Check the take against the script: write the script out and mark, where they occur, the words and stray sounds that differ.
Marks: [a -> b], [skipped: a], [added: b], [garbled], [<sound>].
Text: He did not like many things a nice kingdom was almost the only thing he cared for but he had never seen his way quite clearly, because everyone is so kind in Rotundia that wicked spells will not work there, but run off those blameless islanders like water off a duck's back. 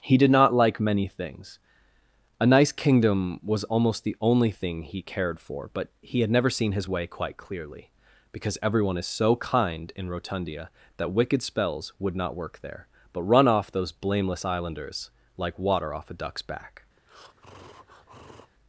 He did not like many things a nice kingdom was almost the only thing he cared for but he had never seen his way quite clearly, because everyone is so kind in Rotundia that wicked spells [will -> would] not work there, but run off those blameless islanders like water off a duck's back. [breath]